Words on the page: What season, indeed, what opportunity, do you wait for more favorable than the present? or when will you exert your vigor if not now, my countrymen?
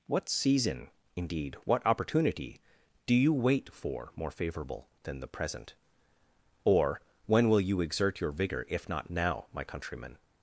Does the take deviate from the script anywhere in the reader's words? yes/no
no